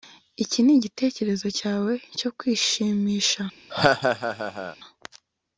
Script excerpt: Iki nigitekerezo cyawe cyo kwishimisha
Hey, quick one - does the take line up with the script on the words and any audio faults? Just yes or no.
no